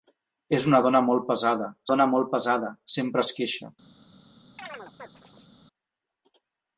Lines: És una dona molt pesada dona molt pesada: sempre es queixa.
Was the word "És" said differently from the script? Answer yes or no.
no